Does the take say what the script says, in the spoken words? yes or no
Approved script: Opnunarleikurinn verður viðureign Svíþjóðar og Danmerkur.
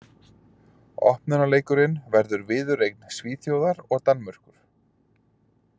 yes